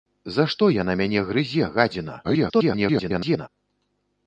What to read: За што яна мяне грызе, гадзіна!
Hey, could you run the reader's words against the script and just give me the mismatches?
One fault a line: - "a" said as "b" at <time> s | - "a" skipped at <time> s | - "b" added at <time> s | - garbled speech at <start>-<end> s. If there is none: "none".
- garbled speech at 2.2-3.5 s